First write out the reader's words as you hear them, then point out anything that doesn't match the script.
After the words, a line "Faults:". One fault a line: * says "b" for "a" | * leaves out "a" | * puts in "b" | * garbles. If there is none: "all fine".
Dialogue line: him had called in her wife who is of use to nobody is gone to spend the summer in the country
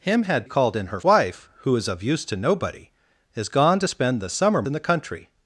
him had called in her wife who is of use to nobody is gone to spend the summer in the country
Faults:
all fine